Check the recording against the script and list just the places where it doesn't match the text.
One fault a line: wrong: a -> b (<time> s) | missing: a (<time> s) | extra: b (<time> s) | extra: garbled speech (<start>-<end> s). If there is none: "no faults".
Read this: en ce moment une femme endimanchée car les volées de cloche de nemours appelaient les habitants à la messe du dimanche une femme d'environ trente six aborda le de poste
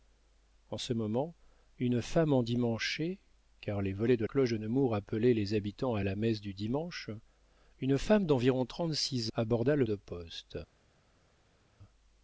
no faults